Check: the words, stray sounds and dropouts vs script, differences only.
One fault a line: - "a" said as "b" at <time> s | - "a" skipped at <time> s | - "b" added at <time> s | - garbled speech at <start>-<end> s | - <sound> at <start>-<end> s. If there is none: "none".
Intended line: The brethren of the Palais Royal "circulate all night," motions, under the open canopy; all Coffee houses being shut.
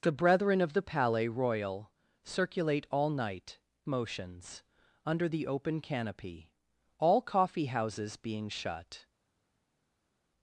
none